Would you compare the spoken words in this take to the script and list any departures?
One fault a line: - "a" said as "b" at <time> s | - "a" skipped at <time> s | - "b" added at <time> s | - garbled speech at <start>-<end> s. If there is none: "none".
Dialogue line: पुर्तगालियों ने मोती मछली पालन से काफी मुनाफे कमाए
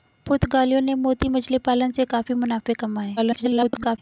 - garbled speech at 3.2-4.0 s